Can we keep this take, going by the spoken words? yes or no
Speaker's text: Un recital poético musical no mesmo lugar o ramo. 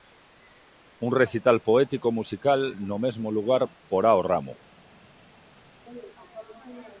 no